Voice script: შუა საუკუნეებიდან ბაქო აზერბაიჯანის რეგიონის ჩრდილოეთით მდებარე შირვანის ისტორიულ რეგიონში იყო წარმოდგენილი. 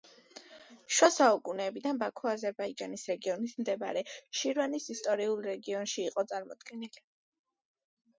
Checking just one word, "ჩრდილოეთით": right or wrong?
wrong